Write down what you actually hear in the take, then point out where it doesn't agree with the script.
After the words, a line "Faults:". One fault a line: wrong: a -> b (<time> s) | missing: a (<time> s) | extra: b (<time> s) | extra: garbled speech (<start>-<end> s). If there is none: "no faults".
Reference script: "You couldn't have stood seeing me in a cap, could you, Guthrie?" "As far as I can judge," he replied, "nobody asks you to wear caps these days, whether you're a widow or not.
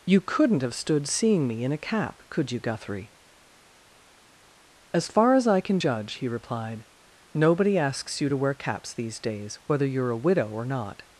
"You couldn't have stood seeing me in a cap, could you, Guthrie?" "As far as I can judge," he replied, "nobody asks you to wear caps these days, whether you're a widow or not.
Faults:
no faults